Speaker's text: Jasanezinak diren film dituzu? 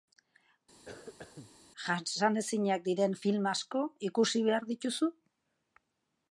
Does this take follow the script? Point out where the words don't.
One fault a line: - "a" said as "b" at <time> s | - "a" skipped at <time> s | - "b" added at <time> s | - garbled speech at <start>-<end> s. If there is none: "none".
- "asko ikusi behar" added at 3.5 s